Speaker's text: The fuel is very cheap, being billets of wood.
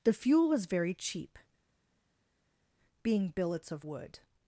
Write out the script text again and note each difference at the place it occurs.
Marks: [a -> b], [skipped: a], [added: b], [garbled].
The fuel [is -> was] very cheap, being billets of wood.